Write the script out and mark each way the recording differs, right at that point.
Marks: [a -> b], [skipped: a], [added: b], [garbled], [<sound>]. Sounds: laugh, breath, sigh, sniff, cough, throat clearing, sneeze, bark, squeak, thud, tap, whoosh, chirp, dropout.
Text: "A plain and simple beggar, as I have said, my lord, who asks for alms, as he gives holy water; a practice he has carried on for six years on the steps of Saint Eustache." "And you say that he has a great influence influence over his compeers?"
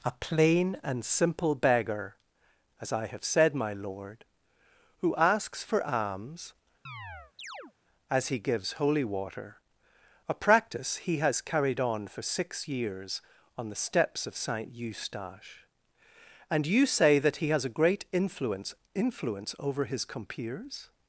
"A plain and simple beggar, as I have said, my lord, who asks for alms, [chirp] as he gives holy water; a practice he has carried on for six years on the steps of Saint Eustache." "And you say that he has a great influence influence over his compeers?"